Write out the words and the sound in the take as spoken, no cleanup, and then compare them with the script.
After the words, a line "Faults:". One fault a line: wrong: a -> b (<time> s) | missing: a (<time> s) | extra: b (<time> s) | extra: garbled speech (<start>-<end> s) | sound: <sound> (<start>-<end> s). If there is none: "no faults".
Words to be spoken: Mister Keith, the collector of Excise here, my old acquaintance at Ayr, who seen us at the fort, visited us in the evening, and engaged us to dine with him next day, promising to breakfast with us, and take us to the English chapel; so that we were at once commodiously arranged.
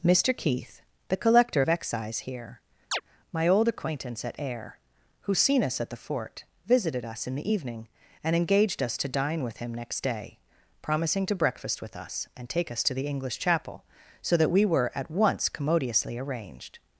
Mister Keith, the collector of Excise here, my old acquaintance at Ayr, who seen us at the fort, visited us in the evening, and engaged us to dine with him next day, promising to breakfast with us, and take us to the English chapel; so that we were at once commodiously arranged.
Faults:
sound: chirp (2.9-3.0 s)